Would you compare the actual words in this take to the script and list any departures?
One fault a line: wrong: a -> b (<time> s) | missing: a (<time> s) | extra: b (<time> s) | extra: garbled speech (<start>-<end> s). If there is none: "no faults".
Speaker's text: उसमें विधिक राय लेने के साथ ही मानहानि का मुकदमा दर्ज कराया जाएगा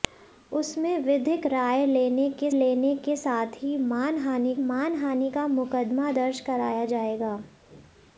extra: लेने के (2.5 s)
extra: मानहानि (4.6 s)